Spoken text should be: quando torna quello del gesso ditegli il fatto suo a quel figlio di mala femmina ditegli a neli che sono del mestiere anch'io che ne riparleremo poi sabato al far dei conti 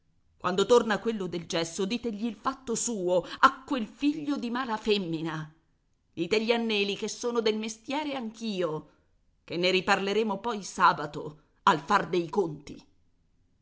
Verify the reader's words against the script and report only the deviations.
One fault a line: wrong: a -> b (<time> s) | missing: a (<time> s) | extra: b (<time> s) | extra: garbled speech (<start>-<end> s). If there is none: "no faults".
no faults